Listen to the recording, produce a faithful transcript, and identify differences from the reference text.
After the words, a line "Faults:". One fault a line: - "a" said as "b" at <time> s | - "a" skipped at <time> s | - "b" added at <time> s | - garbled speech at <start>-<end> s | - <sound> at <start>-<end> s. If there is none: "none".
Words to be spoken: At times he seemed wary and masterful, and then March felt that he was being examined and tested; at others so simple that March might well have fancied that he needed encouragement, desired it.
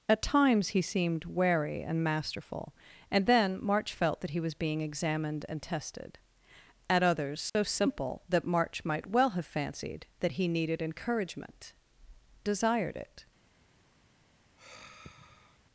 At times he seemed wary and masterful, and then March felt that he was being examined and tested; at others so simple that March might well have fancied that he needed encouragement, desired it.
Faults:
- dropout at 7.5-7.5 s
- sigh at 14.6-15.6 s